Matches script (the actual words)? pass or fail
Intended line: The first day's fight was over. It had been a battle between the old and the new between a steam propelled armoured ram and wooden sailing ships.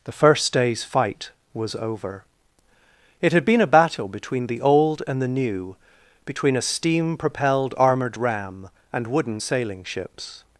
pass